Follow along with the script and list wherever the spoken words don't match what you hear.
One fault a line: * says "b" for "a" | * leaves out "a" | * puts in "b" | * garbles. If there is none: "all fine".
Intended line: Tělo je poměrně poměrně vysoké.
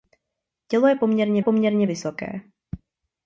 all fine